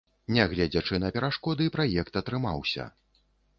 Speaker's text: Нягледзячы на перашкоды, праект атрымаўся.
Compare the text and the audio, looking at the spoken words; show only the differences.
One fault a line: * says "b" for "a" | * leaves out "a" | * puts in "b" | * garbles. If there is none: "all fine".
all fine